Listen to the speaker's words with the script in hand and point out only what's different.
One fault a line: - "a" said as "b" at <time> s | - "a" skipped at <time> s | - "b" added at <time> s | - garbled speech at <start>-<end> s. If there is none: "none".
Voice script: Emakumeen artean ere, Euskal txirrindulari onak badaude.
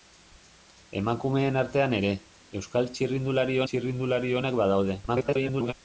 - "txirrindulari" added at 3.7 s
- garbled speech at 5.1-5.7 s